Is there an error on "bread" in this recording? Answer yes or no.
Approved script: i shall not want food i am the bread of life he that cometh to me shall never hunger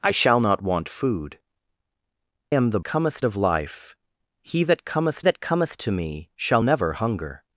yes